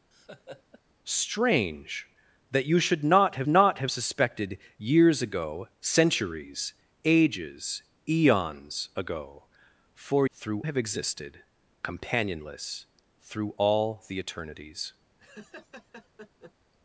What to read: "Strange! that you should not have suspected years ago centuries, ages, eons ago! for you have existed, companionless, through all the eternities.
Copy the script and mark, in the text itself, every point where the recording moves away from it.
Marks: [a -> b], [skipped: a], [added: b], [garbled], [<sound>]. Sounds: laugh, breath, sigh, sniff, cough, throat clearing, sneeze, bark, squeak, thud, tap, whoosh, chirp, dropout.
[laugh] "Strange! that you should not have [added: not have] suspected years ago centuries, ages, eons ago! for [you -> through] have existed, companionless, through all the eternities. [laugh]